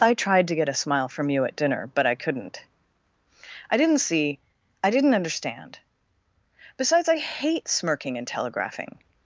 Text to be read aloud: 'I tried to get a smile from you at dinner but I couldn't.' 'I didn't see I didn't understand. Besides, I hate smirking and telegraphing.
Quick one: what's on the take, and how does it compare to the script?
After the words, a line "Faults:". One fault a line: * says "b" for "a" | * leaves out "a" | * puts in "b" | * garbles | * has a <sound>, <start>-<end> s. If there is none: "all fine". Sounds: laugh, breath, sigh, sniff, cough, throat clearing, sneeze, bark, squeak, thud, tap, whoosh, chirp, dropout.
'I tried to get a smile from you at dinner but I couldn't.' 'I didn't see I didn't understand. Besides, I hate smirking and telegraphing.
Faults:
all fine